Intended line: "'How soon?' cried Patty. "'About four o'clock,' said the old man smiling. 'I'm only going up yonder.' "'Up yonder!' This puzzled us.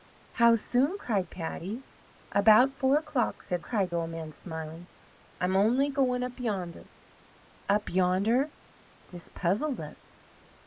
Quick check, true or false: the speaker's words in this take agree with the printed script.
false